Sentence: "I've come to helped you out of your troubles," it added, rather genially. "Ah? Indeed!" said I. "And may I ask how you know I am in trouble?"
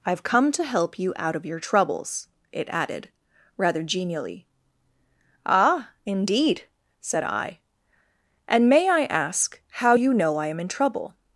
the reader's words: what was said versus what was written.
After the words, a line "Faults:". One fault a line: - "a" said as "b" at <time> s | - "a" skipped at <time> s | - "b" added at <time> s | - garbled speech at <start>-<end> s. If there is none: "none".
"I've come to help you out of your troubles," it added, rather genially. "Ah? Indeed!" said I. "And may I ask how you know I am in trouble?"
Faults:
- "helped" said as "help" at 0.6 s